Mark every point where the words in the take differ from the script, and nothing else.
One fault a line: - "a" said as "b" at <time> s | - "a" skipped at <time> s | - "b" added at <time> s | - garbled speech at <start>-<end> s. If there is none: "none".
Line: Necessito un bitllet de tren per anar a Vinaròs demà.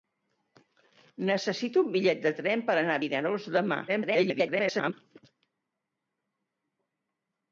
- garbled speech at 3.9-4.9 s